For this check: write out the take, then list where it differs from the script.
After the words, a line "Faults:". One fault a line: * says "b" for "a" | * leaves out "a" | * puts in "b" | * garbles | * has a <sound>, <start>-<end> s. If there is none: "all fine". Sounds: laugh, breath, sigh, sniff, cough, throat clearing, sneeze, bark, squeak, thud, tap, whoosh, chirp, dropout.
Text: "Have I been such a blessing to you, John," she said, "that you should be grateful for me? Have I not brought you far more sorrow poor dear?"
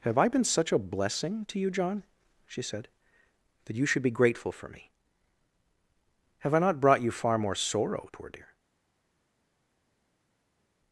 "Have I been such a blessing to you, John," she said, "that you should be grateful for me? Have I not brought you far more sorrow poor dear?"
Faults:
all fine